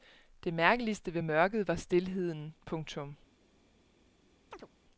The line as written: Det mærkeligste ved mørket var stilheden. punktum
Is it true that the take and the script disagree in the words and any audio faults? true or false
true